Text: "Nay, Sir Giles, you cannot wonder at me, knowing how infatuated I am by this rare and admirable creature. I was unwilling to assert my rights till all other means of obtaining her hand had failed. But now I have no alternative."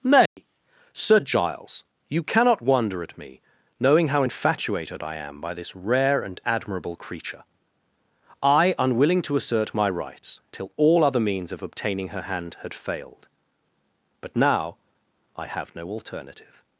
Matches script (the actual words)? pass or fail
fail